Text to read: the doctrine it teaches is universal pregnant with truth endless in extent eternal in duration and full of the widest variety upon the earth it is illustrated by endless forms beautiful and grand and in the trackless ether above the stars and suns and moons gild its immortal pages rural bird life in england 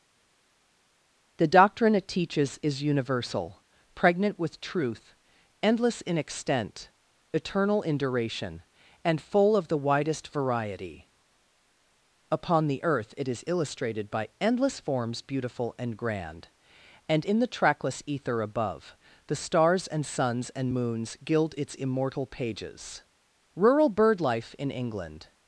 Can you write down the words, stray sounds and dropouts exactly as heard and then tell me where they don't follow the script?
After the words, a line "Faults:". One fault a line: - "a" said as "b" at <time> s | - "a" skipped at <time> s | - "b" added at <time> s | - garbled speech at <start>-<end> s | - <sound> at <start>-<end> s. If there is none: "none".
the doctrine it teaches is universal pregnant with truth endless in extent eternal in duration and full of the widest variety upon the earth it is illustrated by endless forms beautiful and grand and in the trackless ether above the stars and suns and moons gild its immortal pages rural bird life in england
Faults:
none